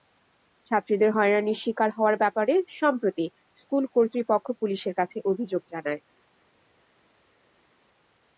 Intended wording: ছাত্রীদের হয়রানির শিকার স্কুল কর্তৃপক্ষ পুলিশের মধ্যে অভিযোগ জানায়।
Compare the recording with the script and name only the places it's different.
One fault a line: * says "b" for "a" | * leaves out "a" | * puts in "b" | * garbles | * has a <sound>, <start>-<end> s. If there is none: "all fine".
* puts in "হওয়ার ব্যাপারে সম্প্রতি"
* says "কাছে" for "মধ্যে"